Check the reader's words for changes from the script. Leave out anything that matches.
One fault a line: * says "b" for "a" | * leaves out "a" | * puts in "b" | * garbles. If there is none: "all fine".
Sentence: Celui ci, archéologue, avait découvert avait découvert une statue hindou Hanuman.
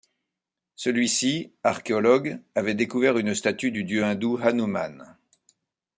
* says "une statue du dieu" for "avait découvert une statue"